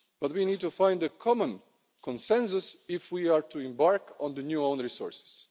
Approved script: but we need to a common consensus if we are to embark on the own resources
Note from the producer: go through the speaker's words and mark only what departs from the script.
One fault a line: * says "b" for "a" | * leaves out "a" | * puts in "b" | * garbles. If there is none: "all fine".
* puts in "find"
* puts in "new"